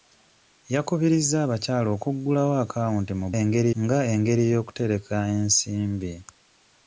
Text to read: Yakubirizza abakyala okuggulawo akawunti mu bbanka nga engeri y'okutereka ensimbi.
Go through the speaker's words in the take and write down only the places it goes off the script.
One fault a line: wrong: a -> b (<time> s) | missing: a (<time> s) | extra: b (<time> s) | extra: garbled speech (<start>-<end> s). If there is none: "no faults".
wrong: bbanka -> engeri (3.4 s)